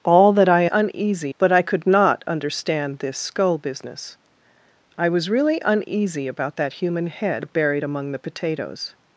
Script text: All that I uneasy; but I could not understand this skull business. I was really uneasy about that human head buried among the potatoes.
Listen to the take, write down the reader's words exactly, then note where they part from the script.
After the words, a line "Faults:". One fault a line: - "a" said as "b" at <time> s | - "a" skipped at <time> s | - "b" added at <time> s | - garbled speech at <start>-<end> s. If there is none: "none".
All that I uneasy; but I could not understand this skull business. I was really uneasy about that human head buried among the potatoes.
Faults:
none